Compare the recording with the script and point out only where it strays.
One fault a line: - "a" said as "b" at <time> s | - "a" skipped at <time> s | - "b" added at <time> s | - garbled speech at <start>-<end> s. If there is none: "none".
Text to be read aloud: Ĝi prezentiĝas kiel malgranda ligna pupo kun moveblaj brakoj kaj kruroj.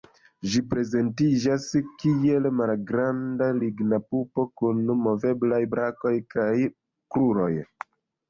none